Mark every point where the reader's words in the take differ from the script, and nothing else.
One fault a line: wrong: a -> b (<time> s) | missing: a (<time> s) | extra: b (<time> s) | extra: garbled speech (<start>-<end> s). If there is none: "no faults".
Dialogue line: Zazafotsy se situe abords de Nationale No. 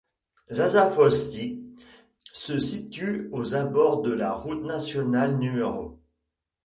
extra: aux (3.3 s)
extra: la Route (4.1 s)